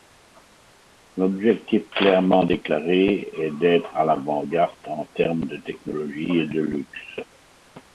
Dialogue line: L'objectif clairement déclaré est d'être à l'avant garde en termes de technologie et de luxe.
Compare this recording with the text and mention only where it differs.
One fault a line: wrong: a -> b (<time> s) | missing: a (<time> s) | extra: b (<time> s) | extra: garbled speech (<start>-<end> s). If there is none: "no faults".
no faults